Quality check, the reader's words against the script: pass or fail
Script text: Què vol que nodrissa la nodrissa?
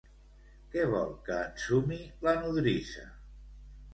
fail